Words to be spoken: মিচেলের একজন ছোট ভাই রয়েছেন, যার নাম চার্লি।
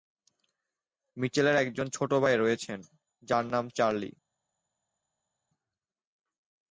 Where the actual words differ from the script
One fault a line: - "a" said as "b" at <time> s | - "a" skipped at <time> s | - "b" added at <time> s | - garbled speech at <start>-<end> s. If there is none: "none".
none